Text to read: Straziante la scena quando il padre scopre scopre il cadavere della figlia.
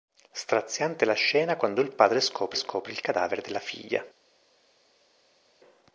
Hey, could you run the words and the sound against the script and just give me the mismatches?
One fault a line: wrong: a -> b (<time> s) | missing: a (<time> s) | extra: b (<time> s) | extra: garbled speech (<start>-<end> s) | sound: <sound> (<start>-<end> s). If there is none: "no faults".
no faults